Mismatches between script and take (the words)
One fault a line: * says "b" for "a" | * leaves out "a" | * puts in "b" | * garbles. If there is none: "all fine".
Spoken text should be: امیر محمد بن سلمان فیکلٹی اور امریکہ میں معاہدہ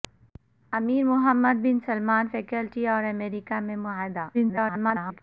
* garbles